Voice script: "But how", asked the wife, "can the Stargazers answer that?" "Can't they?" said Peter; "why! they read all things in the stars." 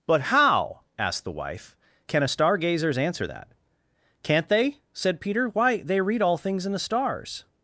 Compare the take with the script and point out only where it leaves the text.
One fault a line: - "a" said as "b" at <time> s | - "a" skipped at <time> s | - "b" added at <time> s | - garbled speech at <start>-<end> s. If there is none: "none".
- "the" said as "a" at 2.2 s